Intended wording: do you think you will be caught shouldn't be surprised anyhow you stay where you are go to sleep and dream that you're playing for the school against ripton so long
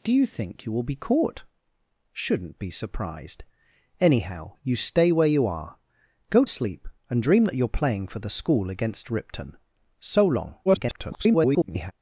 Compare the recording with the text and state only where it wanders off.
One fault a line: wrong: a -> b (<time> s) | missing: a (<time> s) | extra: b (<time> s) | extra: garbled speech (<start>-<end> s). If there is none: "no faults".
missing: to (6.4 s)
extra: garbled speech (10.7-11.9 s)